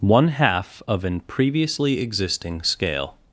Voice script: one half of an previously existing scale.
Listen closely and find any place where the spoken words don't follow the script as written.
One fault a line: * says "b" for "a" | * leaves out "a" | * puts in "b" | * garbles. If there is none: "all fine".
all fine